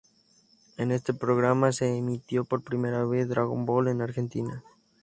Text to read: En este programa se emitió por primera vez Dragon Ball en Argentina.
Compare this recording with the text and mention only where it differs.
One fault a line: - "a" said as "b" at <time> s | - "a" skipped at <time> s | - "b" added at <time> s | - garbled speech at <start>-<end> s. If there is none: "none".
none